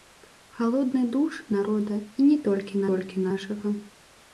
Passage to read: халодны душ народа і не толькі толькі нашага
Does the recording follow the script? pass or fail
pass